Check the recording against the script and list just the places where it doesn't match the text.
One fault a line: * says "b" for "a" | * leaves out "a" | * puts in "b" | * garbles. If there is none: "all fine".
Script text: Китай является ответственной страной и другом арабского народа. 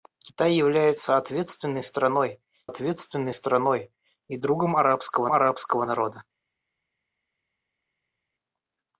* puts in "ответственной страной"
* puts in "арабского"